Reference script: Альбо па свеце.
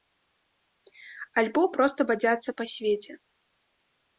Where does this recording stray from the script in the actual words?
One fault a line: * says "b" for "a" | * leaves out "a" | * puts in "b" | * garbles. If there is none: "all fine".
* puts in "проста бадзяцца"